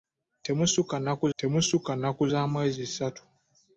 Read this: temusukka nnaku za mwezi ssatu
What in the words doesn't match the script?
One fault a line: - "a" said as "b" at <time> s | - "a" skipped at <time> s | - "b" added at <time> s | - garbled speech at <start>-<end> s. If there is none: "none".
- "temusukka nnaku" added at 1.4 s